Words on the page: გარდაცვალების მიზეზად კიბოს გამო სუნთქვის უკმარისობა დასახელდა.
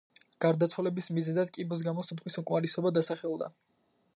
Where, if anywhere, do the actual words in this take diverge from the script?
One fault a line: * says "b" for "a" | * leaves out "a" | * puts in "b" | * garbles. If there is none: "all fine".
all fine